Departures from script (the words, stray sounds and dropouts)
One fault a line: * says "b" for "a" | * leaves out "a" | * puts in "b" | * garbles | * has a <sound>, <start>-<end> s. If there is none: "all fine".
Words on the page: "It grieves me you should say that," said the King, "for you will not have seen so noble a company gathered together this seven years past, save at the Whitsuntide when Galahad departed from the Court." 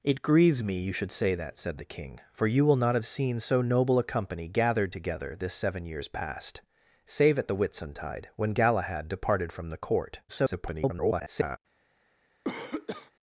* garbles
* has a cough, 12.4-13.1 s